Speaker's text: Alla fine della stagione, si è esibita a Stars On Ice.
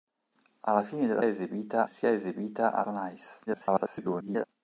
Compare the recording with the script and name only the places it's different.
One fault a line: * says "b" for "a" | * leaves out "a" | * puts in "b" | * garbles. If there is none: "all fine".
* says "esibita" for "stagione"
* leaves out "Stars"
* garbles